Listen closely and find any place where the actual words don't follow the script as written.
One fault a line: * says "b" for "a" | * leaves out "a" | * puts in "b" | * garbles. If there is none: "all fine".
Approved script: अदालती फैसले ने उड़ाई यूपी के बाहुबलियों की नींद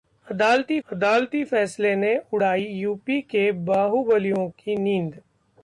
* puts in "अदालती"